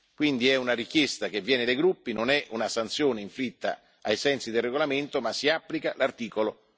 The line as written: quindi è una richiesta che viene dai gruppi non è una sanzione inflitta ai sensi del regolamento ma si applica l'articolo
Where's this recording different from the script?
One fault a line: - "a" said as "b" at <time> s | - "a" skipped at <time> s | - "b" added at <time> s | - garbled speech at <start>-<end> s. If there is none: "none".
none